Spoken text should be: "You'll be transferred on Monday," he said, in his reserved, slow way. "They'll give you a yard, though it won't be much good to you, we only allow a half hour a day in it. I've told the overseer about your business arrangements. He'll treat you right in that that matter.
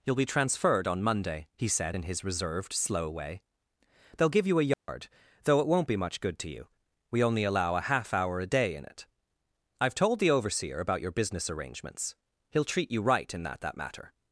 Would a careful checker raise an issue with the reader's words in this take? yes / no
no